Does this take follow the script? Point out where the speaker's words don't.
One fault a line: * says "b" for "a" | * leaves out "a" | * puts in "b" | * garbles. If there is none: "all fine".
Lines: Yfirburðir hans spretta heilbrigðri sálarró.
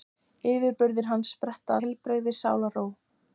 all fine